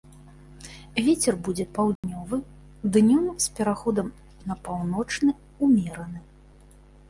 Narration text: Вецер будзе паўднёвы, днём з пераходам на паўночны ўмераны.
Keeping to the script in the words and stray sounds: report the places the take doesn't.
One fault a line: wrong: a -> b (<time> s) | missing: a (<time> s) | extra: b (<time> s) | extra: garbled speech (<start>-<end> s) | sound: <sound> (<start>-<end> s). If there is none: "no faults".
sound: dropout (2.0-2.0 s)